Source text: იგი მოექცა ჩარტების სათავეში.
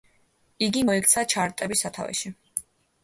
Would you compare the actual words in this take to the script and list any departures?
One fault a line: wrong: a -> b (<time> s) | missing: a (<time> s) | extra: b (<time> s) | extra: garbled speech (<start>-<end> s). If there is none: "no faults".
no faults